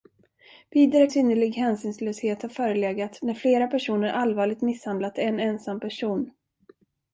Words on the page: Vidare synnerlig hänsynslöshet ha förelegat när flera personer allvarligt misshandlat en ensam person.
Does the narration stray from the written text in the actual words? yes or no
no